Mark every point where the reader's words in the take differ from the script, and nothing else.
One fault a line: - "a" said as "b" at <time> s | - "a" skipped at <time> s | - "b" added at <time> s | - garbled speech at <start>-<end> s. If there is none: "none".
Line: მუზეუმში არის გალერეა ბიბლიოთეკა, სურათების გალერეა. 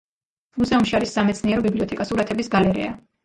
- "გალერეა" said as "სამეცნიერო" at 1.2 s